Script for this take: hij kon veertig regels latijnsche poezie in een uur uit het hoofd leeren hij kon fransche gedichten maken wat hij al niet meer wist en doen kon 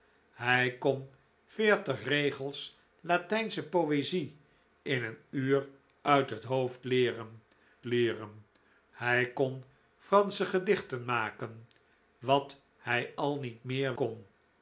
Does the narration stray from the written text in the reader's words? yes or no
yes